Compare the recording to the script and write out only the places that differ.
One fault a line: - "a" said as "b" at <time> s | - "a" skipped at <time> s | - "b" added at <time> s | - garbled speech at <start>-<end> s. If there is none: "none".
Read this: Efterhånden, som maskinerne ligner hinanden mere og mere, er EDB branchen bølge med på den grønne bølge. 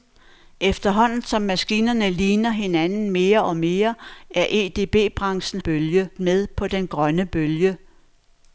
none